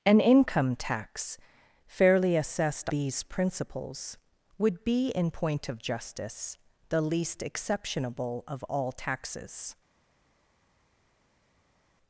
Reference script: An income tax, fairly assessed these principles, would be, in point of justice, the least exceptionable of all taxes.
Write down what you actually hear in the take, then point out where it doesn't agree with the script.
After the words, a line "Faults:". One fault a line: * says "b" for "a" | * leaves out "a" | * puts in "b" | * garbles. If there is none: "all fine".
An income tax, fairly assessed these principles, would be, in point of justice, the least exceptionable of all taxes.
Faults:
all fine